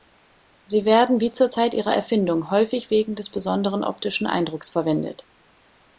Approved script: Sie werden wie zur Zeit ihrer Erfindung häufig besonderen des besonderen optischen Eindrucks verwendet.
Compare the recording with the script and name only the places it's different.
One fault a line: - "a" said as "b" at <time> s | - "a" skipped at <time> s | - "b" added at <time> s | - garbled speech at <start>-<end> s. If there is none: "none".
- "besonderen" said as "wegen" at 2.9 s